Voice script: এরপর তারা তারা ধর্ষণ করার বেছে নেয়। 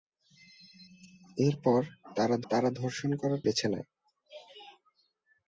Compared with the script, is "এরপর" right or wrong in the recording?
right